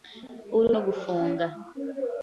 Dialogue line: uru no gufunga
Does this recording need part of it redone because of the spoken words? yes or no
no